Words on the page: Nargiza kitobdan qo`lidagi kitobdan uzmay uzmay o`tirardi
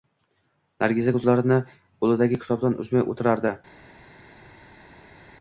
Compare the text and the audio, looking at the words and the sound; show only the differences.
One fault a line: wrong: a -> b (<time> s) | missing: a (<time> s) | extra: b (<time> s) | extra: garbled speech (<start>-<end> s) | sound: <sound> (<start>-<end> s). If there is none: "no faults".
wrong: kitobdan -> ko`zlarini (1.2 s)
missing: uzmay (3.1 s)